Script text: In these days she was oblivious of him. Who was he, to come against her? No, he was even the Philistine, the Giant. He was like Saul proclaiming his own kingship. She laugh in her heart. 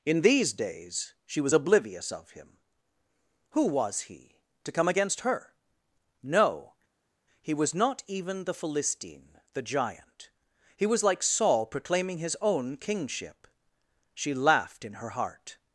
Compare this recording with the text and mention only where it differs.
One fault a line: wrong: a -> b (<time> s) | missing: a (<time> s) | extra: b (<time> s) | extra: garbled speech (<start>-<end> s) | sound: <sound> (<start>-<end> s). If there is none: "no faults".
extra: not (7.7 s)
wrong: laugh -> laughed (14.3 s)